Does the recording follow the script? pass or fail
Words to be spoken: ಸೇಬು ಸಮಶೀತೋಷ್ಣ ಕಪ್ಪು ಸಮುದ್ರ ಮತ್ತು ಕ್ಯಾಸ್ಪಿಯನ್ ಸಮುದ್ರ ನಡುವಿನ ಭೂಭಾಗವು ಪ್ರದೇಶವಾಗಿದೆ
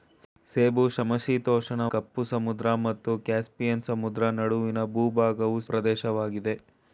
pass